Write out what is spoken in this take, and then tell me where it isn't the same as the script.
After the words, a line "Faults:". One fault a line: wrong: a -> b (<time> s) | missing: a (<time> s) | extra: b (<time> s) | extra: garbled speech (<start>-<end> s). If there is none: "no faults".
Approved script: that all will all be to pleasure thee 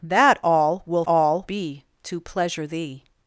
that all will all be to pleasure thee
Faults:
no faults